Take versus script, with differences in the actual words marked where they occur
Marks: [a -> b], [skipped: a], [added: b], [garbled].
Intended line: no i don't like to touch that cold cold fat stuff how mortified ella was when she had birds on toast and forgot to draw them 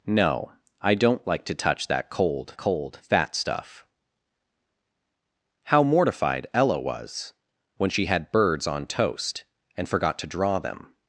no i don't like to touch that cold cold fat stuff how mortified ella was when she had birds on toast and forgot to draw them